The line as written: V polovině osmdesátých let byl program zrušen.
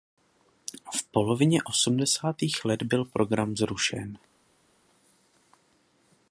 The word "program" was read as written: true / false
true